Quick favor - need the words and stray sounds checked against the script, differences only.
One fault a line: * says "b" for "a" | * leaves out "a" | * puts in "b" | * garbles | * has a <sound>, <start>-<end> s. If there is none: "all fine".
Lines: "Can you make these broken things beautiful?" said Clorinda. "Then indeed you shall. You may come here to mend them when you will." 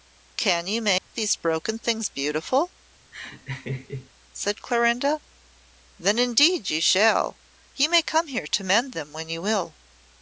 * has a dropout, 1.0-1.1 s
* has a laugh, 3.1-4.1 s